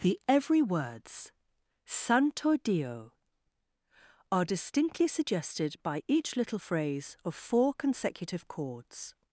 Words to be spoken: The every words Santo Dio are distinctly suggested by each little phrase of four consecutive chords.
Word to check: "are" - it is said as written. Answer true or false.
true